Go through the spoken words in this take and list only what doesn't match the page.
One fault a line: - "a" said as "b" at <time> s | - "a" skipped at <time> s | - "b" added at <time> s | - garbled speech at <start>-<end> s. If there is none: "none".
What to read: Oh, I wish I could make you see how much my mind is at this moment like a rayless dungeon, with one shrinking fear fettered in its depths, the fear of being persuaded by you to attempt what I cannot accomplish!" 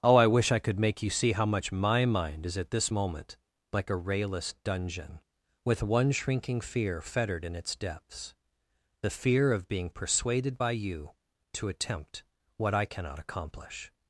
none